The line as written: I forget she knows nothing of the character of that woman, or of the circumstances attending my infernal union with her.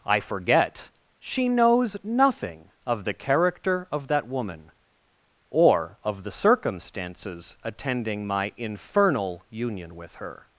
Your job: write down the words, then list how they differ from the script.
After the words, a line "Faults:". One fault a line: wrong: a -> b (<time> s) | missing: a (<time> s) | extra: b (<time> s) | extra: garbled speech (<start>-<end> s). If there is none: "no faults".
I forget she knows nothing of the character of that woman, or of the circumstances attending my infernal union with her.
Faults:
no faults